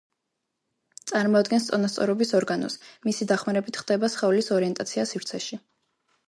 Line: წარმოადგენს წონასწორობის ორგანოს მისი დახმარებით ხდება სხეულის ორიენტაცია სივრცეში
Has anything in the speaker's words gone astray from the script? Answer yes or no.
no